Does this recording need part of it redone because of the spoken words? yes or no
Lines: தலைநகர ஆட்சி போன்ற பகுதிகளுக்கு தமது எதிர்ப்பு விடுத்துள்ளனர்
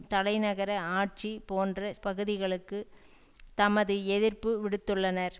no